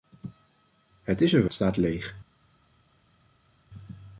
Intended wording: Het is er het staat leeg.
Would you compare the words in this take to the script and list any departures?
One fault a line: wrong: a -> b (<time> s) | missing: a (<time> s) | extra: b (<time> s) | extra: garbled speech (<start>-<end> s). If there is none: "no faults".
no faults